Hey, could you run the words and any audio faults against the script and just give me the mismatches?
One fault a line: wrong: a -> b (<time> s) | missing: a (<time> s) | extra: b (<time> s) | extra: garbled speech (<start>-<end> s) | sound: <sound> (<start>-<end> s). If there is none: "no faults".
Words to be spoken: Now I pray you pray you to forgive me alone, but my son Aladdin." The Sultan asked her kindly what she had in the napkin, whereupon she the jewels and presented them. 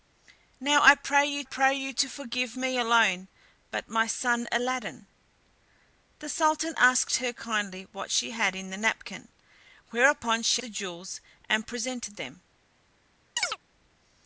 sound: chirp (13.4-13.6 s)